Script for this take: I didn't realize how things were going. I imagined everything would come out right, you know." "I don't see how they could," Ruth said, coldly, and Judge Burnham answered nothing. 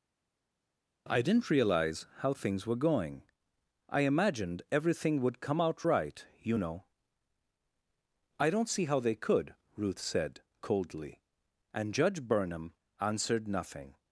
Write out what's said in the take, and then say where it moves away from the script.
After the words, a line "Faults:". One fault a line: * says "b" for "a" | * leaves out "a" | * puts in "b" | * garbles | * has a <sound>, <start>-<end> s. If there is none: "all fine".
I didn't realize how things were going. I imagined everything would come out right, you know." "I don't see how they could," Ruth said, coldly, and Judge Burnham answered nothing.
Faults:
all fine